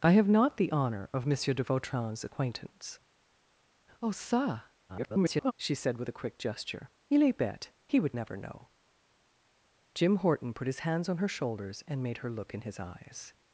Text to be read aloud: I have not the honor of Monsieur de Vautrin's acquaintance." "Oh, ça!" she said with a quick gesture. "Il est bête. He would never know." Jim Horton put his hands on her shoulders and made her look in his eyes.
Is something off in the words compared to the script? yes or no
yes